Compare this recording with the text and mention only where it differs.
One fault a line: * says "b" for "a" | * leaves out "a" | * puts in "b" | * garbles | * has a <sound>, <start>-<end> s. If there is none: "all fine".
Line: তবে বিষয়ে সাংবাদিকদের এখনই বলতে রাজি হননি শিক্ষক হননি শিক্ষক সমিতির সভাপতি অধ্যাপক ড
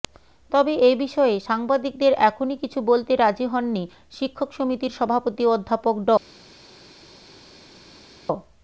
* puts in "এ"
* puts in "কিছু"
* leaves out "হননি শিক্ষক"